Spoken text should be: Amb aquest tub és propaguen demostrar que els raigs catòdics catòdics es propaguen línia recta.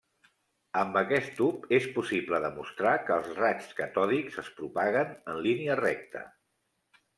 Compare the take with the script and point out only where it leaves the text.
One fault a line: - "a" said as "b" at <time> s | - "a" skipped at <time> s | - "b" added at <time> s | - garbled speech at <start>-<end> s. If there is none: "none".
- "propaguen" said as "possible" at 2.0 s
- "catòdics" skipped at 4.4 s
- "en" added at 5.3 s